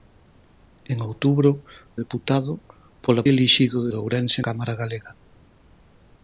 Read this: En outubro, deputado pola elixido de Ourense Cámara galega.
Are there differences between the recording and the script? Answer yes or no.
no